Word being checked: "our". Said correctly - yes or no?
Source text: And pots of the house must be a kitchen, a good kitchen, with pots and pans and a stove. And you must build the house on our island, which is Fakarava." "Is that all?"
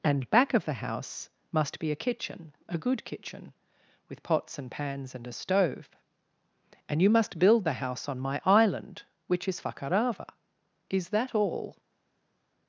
no